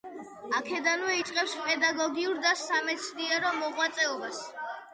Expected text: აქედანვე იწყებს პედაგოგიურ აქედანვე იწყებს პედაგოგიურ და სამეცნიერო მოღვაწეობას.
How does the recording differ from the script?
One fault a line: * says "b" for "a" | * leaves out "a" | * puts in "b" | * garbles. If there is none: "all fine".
* leaves out "აქედანვე იწყებს პედაგოგიურ"